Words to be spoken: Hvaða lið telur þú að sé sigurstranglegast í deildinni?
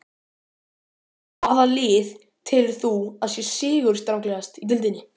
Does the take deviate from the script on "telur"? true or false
false